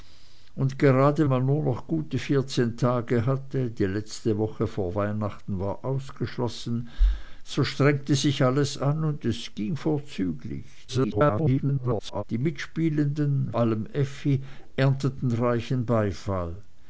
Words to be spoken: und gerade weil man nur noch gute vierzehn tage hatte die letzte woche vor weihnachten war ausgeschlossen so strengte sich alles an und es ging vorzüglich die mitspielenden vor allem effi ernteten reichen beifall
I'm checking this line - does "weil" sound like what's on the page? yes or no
no